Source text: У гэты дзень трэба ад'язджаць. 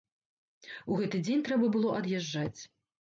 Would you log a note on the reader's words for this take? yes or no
yes